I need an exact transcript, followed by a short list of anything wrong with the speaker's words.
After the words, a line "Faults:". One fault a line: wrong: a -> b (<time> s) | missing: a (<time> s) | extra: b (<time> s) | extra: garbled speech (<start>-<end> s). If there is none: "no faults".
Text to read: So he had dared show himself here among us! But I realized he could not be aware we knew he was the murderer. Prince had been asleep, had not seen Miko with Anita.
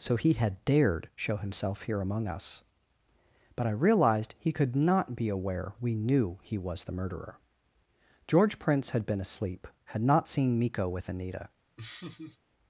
So he had dared show himself here among us! But I realized he could not be aware we knew he was the murderer. George Prince had been asleep, had not seen Miko with Anita.
Faults:
extra: George (8.3 s)